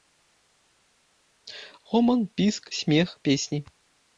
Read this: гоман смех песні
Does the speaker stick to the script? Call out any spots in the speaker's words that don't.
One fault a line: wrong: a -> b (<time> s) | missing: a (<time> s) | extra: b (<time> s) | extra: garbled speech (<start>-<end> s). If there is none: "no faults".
extra: піск (2.3 s)